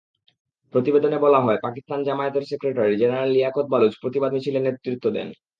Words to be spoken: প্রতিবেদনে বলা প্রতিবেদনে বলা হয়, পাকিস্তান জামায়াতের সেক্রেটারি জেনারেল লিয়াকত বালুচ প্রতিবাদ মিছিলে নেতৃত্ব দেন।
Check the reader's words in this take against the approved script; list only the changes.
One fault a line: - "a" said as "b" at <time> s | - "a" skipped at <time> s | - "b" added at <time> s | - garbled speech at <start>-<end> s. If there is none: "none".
- "প্রতিবেদনে বলা" skipped at 1.4 s